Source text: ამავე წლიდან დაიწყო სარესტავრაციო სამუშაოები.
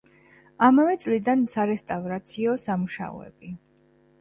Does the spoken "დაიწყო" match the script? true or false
false